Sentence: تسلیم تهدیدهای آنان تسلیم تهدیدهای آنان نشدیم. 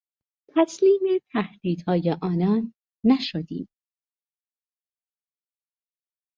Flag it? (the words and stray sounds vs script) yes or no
yes